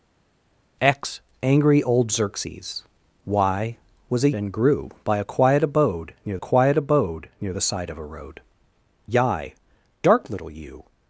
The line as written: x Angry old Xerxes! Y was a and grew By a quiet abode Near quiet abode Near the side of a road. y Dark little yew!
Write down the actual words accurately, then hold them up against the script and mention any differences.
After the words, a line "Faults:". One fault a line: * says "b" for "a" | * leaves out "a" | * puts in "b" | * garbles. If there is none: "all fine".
x Angry old Xerxes! Y was a and grew By a quiet abode Near quiet abode Near the side of a road. y Dark little yew!
Faults:
all fine